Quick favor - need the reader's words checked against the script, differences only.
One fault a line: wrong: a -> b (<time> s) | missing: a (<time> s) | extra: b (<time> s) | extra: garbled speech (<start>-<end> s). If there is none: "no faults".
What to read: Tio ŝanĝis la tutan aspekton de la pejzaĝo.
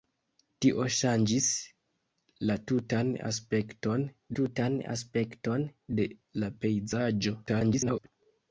extra: tutan aspekton (4.4 s)
extra: garbled speech (7.5-8.1 s)